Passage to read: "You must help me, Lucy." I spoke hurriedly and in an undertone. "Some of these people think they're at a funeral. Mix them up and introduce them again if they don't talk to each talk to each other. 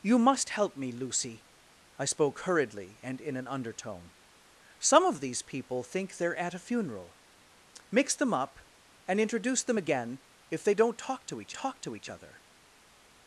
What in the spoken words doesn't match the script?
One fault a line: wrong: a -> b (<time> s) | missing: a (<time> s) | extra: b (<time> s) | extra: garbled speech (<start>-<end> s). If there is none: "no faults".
no faults